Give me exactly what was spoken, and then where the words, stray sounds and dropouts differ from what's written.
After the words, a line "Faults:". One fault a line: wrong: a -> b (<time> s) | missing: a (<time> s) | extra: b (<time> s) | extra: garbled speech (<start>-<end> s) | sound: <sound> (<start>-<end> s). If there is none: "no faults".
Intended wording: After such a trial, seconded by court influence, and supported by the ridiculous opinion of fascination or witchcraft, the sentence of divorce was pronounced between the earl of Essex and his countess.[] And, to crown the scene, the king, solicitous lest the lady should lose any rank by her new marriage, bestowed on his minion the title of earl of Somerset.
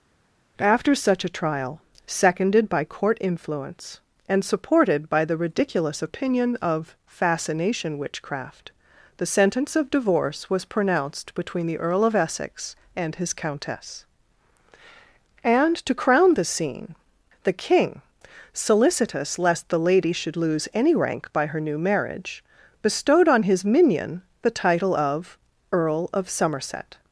After such a trial, seconded by court influence, and supported by the ridiculous opinion of fascination witchcraft, the sentence of divorce was pronounced between the earl of Essex and his countess.[] And, to crown the scene, the king, solicitous lest the lady should lose any rank by her new marriage, bestowed on his minion the title of earl of Somerset.
Faults:
missing: or (8.0 s)